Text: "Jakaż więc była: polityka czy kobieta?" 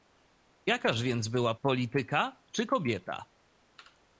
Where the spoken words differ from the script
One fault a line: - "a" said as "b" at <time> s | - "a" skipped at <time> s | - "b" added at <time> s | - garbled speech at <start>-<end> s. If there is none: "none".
none